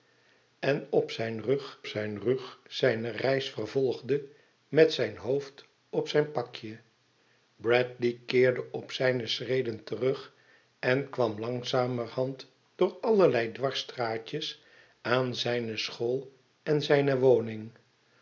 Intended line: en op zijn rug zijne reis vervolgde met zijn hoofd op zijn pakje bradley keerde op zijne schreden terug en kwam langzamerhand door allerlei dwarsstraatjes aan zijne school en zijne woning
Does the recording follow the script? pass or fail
fail